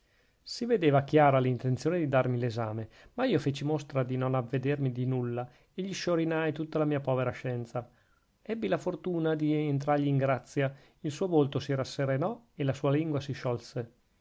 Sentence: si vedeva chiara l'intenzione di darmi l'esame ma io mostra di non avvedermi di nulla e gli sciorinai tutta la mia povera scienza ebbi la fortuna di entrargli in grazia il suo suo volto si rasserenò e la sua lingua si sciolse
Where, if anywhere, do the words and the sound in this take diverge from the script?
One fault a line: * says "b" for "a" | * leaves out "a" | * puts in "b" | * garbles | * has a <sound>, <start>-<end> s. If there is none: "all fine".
* puts in "feci"
* leaves out "suo"